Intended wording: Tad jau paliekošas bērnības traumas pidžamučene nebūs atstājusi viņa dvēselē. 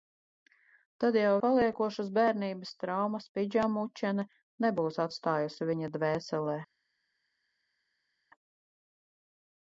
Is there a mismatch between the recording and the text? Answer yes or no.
no